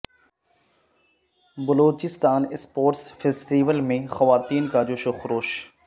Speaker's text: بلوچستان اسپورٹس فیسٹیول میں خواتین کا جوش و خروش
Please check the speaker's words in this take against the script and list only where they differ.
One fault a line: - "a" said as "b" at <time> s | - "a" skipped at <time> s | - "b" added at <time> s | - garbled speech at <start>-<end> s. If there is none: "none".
none